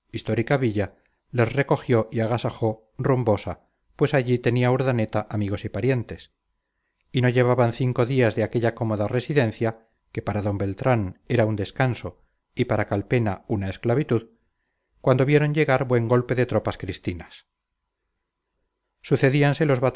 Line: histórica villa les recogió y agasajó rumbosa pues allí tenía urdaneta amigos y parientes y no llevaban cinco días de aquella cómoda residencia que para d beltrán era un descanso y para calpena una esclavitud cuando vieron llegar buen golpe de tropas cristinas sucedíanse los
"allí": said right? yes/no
yes